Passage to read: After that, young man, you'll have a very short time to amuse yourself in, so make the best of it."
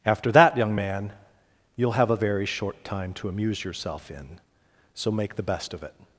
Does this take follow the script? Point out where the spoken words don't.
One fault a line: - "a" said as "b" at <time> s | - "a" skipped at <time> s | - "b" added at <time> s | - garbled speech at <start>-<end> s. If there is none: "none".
none